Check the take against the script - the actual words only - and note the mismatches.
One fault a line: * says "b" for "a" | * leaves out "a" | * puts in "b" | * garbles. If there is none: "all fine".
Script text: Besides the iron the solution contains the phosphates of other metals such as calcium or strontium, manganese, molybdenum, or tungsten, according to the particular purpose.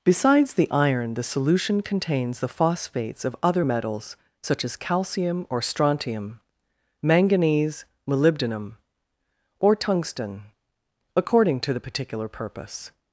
all fine